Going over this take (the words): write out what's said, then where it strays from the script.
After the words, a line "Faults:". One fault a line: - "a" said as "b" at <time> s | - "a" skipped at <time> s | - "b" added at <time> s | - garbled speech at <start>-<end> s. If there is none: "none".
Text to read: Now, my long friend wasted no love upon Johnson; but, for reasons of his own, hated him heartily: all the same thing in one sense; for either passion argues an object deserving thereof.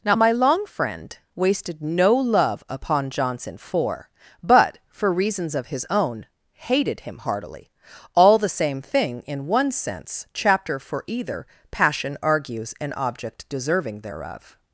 Now, my long friend wasted no love upon Johnson; for but, for reasons of his own, hated him heartily: all the same thing in one sense; chapter for either passion argues an object deserving thereof.
Faults:
- "for" added at 3.6 s
- "chapter" added at 10.3 s